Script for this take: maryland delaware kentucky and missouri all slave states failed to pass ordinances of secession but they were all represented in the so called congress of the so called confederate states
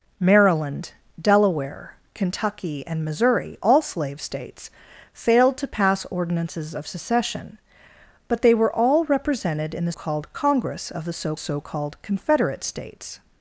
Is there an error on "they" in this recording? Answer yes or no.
no